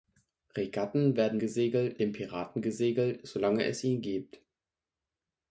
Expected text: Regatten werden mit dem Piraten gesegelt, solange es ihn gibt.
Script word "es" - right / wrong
right